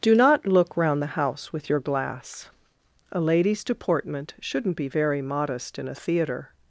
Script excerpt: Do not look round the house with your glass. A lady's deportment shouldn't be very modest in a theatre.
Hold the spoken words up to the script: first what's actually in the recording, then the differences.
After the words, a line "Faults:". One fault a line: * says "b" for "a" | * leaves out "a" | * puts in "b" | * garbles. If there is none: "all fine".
Do not look round the house with your glass. A lady's deportment shouldn't be very modest in a theatre.
Faults:
all fine